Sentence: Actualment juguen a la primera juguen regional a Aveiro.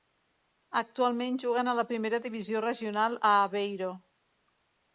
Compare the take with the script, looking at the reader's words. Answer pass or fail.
fail